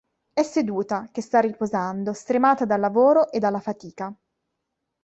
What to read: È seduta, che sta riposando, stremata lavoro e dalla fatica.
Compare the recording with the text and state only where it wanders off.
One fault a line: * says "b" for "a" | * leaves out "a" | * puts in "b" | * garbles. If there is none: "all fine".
* puts in "dal"